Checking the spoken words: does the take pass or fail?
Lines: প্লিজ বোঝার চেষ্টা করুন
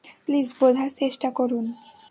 pass